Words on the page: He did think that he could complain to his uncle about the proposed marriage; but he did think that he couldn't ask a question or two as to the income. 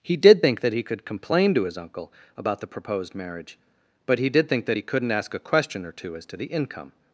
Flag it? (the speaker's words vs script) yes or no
no